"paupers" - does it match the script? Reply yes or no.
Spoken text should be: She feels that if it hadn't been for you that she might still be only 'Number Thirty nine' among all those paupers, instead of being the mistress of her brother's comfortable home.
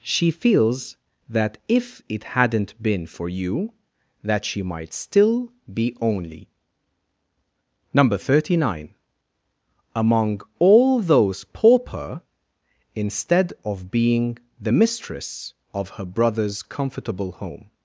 no